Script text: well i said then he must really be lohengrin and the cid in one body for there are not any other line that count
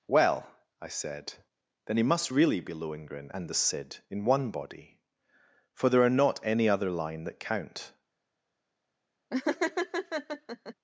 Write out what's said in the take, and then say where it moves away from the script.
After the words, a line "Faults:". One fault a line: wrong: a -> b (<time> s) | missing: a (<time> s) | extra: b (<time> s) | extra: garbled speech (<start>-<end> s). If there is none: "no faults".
well i said then he must really be lohengrin and the cid in one body for there are not any other line that count
Faults:
no faults